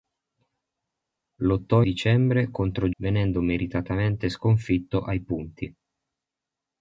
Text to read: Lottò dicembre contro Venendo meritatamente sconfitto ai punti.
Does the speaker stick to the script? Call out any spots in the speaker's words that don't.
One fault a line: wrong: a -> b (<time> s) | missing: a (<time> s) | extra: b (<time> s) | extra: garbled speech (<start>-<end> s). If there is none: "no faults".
no faults